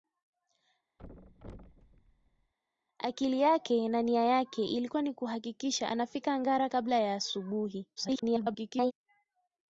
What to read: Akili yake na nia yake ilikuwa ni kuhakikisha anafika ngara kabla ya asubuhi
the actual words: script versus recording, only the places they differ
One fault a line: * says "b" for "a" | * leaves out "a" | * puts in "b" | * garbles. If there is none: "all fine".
* garbles